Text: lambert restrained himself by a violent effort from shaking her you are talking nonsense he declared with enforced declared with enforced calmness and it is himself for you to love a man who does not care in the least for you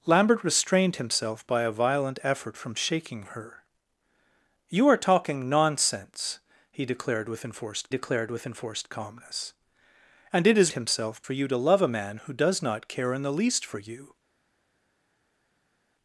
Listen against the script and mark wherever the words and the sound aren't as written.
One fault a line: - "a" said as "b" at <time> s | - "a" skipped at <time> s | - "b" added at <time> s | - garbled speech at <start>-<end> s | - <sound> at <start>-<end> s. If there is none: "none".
none